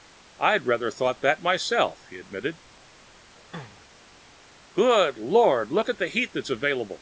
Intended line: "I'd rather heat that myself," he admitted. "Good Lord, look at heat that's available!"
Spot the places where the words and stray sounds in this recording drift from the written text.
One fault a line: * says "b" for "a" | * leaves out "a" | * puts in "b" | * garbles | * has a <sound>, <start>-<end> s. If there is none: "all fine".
* says "thought" for "heat"
* has a throat clearing, 3.4-3.9 s
* puts in "the"